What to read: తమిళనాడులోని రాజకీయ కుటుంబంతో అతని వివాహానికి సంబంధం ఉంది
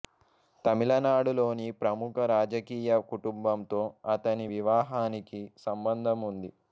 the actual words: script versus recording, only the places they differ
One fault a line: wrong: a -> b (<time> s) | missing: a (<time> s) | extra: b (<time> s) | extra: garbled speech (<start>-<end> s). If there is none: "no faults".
extra: ప్రముఖ (1.8 s)